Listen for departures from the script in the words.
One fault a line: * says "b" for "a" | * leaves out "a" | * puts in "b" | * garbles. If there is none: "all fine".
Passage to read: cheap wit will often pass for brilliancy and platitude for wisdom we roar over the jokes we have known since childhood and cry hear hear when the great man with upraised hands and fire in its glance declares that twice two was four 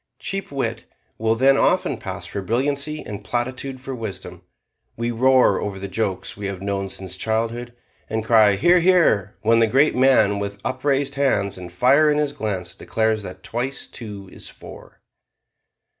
* puts in "then"
* says "his" for "its"
* says "is" for "was"